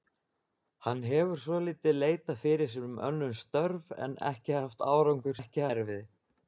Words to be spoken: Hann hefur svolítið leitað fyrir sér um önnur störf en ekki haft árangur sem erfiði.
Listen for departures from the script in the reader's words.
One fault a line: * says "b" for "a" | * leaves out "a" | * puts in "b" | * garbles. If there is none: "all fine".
* says "ekki" for "sem"